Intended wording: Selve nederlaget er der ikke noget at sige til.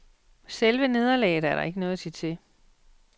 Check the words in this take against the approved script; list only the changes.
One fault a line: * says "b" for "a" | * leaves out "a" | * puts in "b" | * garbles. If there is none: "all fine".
all fine